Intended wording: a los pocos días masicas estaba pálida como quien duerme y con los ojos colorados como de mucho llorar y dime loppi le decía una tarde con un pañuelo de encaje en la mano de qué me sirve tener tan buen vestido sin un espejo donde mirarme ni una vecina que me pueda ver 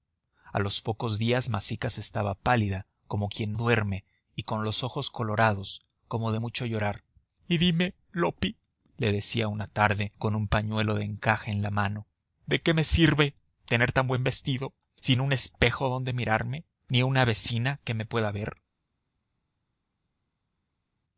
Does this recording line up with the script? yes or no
yes